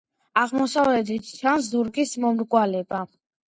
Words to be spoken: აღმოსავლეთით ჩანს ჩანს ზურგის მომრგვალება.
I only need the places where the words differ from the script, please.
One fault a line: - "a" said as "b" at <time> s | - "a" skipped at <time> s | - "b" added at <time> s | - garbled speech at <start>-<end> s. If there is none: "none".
- "ჩანს" skipped at 1.7 s